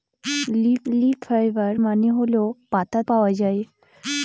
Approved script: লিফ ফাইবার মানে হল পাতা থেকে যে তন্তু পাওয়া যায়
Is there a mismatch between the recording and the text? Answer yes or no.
yes